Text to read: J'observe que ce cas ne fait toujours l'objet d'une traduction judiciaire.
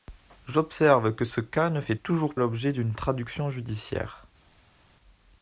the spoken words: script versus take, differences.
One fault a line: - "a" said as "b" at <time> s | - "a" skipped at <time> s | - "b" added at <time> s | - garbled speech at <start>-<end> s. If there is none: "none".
none